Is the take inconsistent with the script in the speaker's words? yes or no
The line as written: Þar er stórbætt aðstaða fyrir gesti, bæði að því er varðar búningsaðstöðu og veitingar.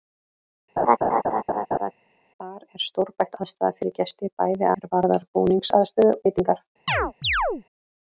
yes